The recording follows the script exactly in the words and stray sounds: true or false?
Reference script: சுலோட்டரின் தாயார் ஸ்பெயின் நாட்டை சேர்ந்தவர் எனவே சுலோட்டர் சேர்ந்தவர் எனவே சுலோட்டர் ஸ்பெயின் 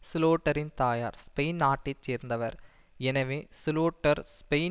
false